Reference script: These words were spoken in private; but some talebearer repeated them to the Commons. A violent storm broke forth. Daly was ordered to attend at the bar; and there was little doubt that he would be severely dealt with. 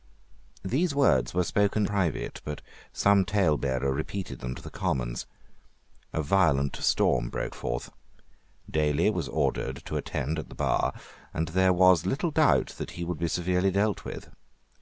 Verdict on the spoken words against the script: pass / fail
fail